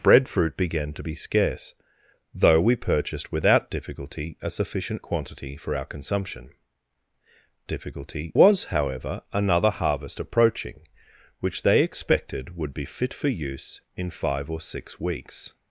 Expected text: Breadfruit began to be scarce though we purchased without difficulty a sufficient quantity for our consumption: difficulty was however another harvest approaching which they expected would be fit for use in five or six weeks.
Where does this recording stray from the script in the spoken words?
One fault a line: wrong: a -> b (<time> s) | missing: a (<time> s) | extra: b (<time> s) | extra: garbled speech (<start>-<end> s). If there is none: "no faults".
no faults